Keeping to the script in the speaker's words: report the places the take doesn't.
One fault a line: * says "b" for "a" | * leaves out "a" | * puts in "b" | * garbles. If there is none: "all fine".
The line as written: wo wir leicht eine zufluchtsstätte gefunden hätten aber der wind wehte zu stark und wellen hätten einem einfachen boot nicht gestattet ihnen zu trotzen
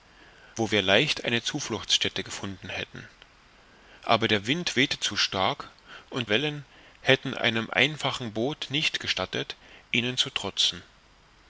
all fine